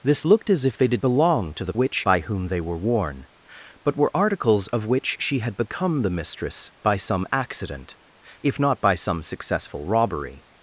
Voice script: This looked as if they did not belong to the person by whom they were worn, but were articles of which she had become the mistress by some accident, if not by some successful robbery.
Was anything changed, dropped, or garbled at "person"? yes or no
yes